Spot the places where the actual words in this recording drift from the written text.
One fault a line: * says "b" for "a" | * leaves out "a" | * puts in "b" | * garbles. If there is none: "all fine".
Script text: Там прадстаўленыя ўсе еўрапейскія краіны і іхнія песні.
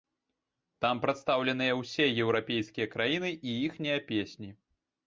all fine